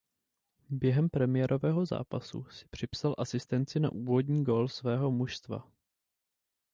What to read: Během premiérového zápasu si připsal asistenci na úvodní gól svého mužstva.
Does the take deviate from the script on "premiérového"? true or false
false